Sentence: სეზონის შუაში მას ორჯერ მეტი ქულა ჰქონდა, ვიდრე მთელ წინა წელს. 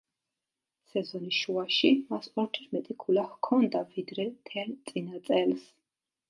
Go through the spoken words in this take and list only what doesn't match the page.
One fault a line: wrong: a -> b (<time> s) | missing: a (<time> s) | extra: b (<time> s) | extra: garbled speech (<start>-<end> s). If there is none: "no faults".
no faults